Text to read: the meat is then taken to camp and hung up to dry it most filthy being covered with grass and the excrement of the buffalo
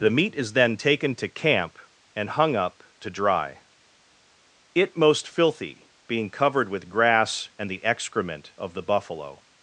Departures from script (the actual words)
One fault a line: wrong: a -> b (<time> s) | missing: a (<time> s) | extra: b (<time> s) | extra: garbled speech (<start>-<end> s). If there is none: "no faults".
no faults